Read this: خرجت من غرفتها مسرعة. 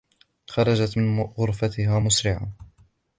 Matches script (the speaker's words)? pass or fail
pass